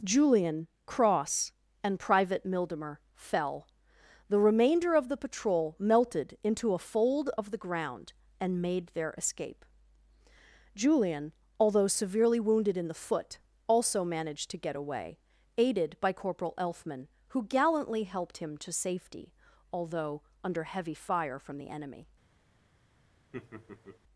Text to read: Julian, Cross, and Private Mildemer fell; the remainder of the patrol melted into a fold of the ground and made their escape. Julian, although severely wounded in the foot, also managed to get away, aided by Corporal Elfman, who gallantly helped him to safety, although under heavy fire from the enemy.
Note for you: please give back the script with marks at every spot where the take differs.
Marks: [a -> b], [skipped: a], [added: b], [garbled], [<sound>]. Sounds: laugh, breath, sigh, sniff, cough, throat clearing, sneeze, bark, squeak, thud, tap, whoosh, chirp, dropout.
Julian, Cross, and Private Mildemer fell; the remainder of the patrol melted into a fold of the ground and made their escape. Julian, although severely wounded in the foot, also managed to get away, aided by Corporal Elfman, who gallantly helped him to safety, although under heavy fire from the enemy. [laugh]